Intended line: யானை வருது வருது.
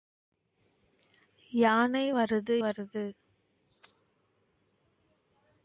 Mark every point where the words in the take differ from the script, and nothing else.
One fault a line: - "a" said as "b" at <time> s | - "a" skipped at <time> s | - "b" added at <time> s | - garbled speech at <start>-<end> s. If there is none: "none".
none